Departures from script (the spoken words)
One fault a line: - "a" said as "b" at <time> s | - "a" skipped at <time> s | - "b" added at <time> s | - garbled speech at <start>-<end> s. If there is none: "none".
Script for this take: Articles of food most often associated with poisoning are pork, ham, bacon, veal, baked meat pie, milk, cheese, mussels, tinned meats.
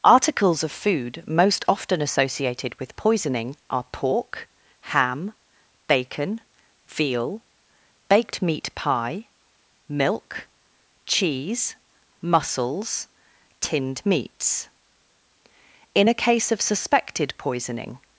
- "In a case of suspected poisoning" added at 15.9 s